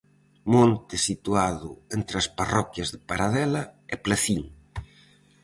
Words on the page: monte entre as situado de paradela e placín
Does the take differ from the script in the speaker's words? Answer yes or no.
yes